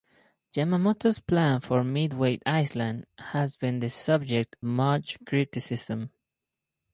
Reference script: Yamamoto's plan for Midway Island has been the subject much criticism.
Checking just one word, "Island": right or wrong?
right